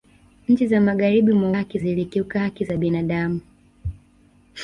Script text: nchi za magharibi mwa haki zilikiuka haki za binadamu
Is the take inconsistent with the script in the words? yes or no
no